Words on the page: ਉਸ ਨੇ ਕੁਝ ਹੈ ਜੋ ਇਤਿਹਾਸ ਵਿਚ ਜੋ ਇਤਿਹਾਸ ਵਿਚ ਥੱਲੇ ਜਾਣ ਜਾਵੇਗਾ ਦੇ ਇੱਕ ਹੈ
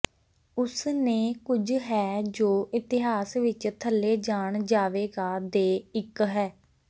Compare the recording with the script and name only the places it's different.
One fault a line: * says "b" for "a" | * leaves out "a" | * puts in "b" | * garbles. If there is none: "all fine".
* leaves out "ਜੋ ਇਤਿਹਾਸ ਵਿਚ"